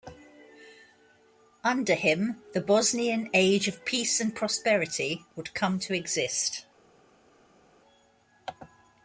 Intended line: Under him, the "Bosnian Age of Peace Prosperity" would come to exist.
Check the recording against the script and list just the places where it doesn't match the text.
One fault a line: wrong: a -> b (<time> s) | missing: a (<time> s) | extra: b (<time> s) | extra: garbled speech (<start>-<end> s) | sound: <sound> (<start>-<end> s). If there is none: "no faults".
extra: and (4.2 s)